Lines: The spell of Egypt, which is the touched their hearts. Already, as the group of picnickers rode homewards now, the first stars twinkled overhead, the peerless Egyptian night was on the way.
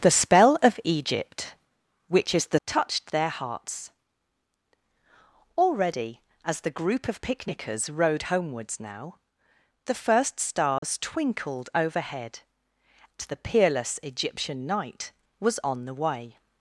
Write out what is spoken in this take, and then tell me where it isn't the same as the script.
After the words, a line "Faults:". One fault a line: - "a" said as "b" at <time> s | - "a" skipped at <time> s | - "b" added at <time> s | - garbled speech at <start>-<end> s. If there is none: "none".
The spell of Egypt, which is the touched their hearts. Already, as the group of picnickers rode homewards now, the first stars twinkled overhead, the peerless Egyptian night was on the way.
Faults:
none